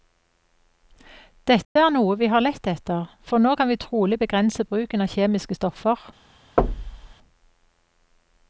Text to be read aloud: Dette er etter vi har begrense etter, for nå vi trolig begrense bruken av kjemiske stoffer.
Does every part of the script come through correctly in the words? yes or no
no